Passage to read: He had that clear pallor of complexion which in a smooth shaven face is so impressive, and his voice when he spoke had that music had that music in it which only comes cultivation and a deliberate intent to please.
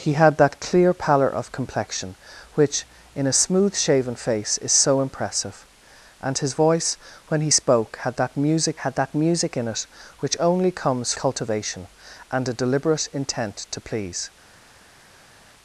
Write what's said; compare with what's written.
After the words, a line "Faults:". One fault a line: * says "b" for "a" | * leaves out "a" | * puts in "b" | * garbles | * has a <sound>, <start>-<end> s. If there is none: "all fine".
He had that clear pallor of complexion which in a smooth shaven face is so impressive, and his voice when he spoke had that music had that music in it which only comes cultivation and a deliberate intent to please.
Faults:
all fine